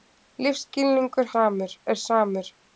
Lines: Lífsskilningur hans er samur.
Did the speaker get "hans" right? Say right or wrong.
wrong